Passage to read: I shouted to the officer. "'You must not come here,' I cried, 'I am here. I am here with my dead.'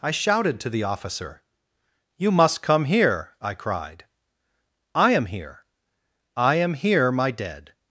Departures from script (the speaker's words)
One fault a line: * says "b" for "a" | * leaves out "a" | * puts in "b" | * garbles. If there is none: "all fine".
* leaves out "not"
* leaves out "with"